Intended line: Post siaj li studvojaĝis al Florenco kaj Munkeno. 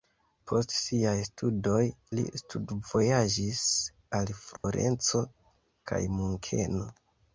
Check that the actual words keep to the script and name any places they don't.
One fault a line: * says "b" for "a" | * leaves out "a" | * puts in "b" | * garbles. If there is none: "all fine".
* puts in "studoj"